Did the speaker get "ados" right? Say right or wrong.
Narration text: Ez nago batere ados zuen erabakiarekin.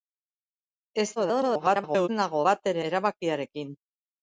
wrong